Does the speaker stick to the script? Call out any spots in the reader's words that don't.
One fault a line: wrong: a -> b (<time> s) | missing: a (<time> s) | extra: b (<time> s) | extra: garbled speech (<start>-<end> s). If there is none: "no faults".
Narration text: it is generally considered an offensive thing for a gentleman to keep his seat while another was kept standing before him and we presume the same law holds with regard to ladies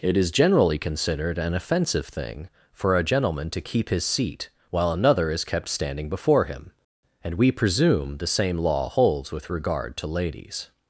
wrong: was -> is (5.3 s)